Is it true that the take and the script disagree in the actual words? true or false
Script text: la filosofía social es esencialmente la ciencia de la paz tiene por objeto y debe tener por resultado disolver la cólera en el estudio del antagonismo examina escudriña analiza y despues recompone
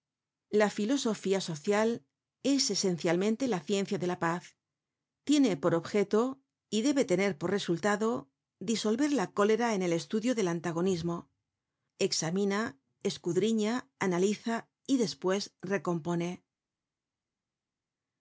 false